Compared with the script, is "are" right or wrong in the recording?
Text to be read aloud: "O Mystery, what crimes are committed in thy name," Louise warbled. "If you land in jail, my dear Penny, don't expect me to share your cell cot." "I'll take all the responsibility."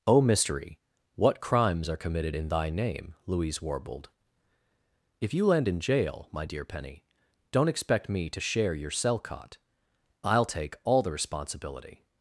right